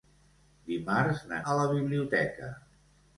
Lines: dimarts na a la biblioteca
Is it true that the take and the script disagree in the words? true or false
false